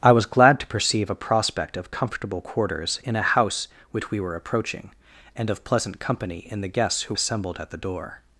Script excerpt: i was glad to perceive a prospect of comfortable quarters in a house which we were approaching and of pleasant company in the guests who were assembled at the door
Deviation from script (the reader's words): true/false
true